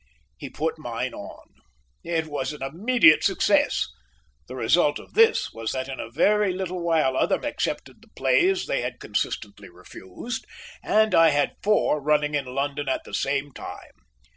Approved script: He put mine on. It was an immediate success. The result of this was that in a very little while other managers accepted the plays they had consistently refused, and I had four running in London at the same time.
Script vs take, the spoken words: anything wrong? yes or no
yes